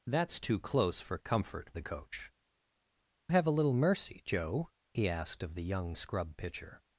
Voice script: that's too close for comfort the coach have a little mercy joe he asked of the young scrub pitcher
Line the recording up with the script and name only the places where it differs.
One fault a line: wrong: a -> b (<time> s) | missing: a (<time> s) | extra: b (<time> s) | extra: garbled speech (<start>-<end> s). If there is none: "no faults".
no faults